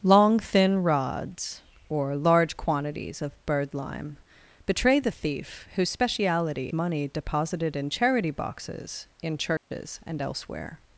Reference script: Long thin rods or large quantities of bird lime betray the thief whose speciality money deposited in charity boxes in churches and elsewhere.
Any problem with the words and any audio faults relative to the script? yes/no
yes